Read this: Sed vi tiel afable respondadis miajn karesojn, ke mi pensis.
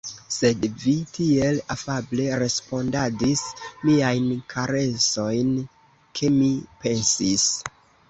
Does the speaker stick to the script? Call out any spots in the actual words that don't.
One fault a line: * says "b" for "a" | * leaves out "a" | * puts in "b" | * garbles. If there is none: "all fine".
all fine